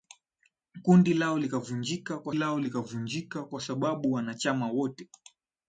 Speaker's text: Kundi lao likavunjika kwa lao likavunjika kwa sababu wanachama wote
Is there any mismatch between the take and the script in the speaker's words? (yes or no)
no